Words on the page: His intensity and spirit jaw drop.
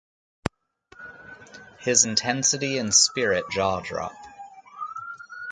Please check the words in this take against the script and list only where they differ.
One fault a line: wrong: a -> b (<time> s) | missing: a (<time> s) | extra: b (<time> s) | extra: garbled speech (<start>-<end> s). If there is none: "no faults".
no faults